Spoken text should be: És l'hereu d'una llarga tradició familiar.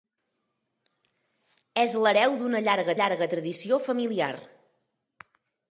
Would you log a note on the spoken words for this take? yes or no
yes